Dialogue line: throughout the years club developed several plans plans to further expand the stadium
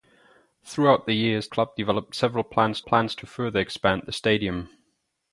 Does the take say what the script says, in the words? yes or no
yes